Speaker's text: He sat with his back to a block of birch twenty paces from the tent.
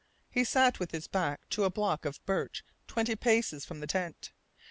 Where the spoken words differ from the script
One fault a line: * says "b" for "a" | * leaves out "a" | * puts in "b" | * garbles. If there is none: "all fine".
all fine